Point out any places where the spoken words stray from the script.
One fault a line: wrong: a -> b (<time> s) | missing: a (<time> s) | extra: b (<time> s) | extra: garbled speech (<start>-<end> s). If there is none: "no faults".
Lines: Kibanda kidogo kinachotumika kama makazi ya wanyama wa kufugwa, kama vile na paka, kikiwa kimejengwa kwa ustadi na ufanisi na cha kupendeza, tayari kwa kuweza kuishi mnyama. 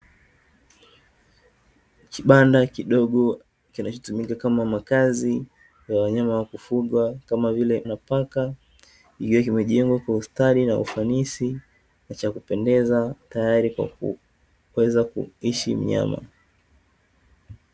no faults